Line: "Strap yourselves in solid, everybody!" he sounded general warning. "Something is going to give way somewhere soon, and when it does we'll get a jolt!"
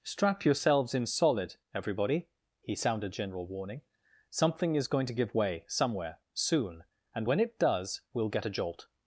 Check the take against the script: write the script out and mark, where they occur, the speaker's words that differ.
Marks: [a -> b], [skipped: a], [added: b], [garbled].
"Strap yourselves in solid, everybody!" he sounded general warning. "Something is going to give way somewhere soon, and when it does we'll get a jolt!"